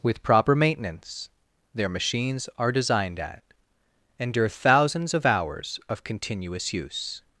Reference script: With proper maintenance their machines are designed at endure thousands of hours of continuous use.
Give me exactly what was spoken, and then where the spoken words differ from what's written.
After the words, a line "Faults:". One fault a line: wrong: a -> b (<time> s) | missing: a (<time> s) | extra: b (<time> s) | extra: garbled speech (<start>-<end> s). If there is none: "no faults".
With proper maintenance their machines are designed at endure thousands of hours of continuous use.
Faults:
no faults